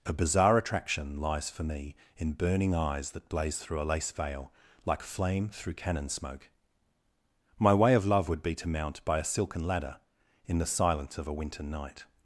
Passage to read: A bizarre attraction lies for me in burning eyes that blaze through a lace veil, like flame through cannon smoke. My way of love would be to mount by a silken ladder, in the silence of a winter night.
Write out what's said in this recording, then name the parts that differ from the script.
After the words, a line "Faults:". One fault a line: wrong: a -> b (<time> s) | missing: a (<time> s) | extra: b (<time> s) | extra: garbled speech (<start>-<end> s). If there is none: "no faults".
A bizarre attraction lies for me in burning eyes that blaze through a lace veil, like flame through cannon smoke. My way of love would be to mount by a silken ladder, in the silence of a winter night.
Faults:
no faults